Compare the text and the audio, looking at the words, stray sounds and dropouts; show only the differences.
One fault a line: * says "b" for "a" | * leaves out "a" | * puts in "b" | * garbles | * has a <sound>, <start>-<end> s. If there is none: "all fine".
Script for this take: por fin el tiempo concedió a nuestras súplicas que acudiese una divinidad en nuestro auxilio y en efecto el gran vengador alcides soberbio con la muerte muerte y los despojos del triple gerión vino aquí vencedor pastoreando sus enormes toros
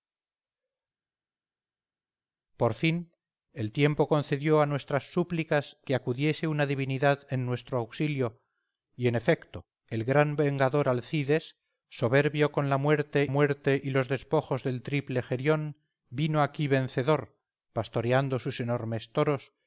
all fine